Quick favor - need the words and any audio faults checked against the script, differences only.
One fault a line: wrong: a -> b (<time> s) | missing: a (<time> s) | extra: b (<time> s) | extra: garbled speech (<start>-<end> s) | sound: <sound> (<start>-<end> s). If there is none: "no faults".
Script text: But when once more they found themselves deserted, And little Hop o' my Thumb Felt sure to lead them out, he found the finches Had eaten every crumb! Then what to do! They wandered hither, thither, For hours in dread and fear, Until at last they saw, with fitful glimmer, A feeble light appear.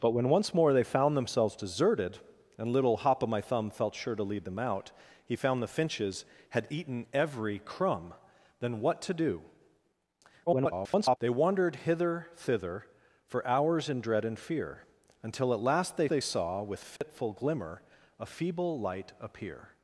extra: garbled speech (10.5-11.2 s)
extra: they (16.1 s)
sound: dropout (17.0-17.0 s)